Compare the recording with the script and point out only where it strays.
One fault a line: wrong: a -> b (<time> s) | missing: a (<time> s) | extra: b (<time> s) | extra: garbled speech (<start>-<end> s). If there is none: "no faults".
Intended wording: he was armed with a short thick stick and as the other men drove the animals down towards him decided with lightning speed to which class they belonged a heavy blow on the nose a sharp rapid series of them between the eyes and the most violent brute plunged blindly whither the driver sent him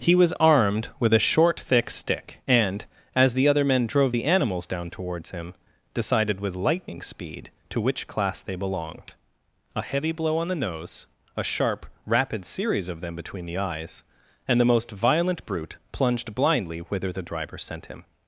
no faults